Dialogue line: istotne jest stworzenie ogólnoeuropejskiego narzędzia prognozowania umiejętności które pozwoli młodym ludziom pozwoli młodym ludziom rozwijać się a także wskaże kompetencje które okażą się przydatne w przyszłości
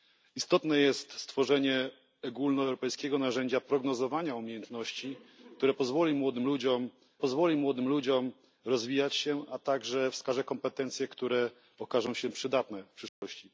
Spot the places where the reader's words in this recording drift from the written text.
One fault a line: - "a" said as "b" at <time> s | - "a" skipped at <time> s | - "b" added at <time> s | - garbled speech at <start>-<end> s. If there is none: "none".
none